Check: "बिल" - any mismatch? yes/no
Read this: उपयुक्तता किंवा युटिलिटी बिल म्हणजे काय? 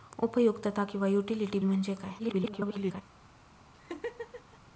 yes